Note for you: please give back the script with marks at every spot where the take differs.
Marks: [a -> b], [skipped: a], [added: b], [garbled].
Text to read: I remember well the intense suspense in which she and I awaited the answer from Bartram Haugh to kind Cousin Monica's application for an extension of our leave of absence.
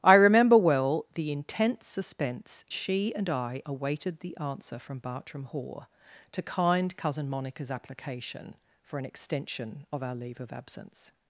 I remember well the intense suspense [skipped: in which] she and I awaited the answer from Bartram Haugh to kind Cousin Monica's application for an extension of our leave of absence.